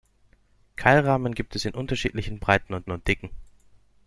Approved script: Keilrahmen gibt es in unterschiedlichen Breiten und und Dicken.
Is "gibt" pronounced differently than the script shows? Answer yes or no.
no